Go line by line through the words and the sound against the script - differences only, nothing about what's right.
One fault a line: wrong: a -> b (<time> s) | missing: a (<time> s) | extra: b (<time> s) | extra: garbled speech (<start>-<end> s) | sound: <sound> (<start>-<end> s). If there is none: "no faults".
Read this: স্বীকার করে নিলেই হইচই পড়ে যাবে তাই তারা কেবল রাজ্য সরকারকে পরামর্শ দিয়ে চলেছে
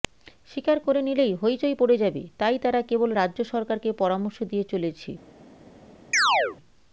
sound: chirp (6.1-6.6 s)